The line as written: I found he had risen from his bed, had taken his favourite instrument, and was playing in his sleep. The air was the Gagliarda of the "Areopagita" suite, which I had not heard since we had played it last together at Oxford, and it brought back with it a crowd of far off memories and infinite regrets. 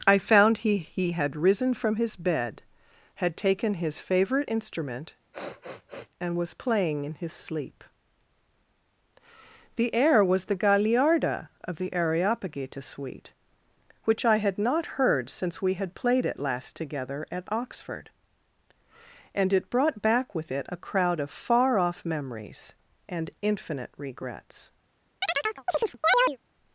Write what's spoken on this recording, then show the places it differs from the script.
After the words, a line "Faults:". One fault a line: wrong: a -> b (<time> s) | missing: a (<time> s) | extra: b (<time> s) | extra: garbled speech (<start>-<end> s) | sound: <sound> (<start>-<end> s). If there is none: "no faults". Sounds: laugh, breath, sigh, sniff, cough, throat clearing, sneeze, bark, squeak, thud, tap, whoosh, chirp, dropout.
I found he he had risen from his bed, had taken his favourite instrument, and was playing in his sleep. The air was the Gagliarda of the "Areopagita" suite, which I had not heard since we had played it last together at Oxford, and it brought back with it a crowd of far off memories and infinite regrets.
Faults:
extra: he (0.8 s)
sound: sniff (5.3-6.1 s)
sound: chirp (25.2-26.4 s)